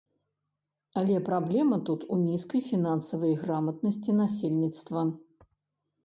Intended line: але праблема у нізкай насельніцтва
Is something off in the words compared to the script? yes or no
yes